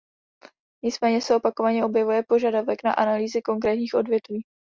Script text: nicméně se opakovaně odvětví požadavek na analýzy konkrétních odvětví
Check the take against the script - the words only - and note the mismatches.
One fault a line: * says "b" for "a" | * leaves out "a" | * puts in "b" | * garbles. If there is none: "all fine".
* says "objevuje" for "odvětví"